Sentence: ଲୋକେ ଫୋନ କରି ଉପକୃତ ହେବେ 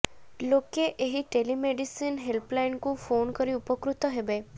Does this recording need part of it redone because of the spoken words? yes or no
yes